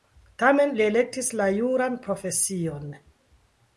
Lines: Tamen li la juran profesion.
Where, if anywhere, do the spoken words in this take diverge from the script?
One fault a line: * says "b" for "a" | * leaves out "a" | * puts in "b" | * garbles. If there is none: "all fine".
* puts in "elektis"